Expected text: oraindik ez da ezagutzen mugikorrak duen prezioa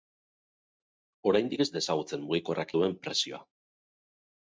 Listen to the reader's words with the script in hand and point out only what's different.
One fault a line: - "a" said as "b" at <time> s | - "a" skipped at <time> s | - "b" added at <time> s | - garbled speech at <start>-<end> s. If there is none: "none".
none